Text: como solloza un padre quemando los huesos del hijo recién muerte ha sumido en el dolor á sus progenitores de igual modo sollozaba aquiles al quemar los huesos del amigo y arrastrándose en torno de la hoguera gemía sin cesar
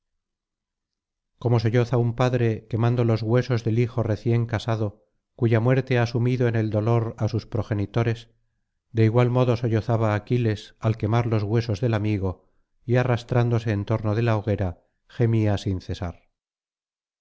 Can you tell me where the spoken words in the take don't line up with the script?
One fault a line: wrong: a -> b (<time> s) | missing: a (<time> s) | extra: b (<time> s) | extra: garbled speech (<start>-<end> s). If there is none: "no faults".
extra: casado cuya (4.5 s)